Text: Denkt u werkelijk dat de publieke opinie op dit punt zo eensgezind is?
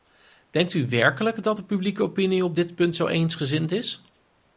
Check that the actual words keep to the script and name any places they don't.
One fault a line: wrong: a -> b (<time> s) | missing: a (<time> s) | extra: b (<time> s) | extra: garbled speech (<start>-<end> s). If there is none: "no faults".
no faults